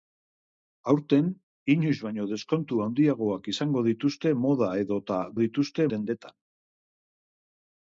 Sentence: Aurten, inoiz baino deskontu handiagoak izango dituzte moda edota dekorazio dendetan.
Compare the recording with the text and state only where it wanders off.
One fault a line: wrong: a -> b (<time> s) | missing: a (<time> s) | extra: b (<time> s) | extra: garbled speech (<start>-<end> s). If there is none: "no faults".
wrong: dekorazio -> dituzte (5.4 s)